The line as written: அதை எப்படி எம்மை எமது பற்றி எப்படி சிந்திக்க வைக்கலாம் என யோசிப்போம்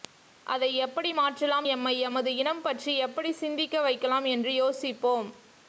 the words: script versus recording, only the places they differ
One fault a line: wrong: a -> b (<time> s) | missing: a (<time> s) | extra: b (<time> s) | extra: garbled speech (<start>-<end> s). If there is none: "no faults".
extra: மாற்றலாம் (1.1 s)
extra: இனம் (2.3 s)
wrong: என -> என்று (4.3 s)